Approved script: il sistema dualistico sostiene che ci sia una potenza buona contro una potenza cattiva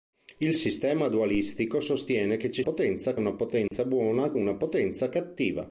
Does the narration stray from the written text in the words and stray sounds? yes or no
yes